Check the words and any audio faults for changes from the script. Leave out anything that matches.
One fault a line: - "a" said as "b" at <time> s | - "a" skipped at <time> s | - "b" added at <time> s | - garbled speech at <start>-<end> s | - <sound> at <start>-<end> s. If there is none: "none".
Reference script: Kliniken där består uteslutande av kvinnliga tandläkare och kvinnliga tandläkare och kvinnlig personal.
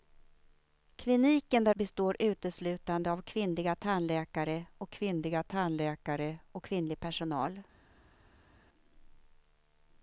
none